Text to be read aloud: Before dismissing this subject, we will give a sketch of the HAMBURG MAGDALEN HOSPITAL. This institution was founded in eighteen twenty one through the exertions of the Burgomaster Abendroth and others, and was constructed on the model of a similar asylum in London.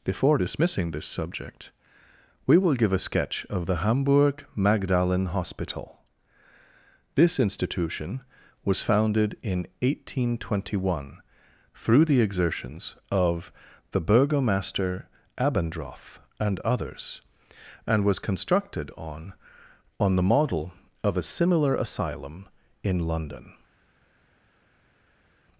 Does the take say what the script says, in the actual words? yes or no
no